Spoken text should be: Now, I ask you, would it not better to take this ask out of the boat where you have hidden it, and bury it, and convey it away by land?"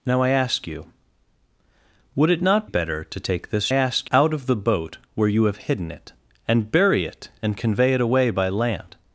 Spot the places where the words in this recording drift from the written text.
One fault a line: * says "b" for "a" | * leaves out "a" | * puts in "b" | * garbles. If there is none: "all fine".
all fine